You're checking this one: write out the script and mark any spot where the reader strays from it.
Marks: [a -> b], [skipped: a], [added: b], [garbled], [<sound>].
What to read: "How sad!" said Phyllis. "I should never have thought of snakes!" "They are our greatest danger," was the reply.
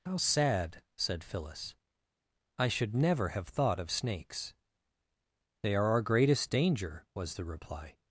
"How sad!" said Phyllis. "I should never have thought of snakes!" "They are our greatest danger," was the reply.